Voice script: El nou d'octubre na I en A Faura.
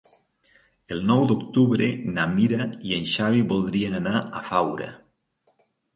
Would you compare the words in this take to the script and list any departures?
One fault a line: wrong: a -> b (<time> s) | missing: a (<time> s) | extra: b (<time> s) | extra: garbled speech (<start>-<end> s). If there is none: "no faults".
extra: Mira (2.3 s)
extra: Xavi voldrien anar (3.1 s)